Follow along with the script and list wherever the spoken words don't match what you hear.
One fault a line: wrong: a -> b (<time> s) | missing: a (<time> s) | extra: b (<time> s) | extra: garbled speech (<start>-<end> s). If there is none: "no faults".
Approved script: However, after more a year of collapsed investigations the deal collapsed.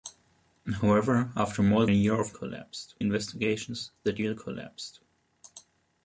no faults